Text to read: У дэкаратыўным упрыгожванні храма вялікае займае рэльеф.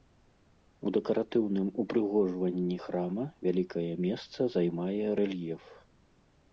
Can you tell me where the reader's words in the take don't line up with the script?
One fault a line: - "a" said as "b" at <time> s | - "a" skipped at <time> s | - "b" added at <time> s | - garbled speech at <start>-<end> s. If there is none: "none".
- "месца" added at 4.1 s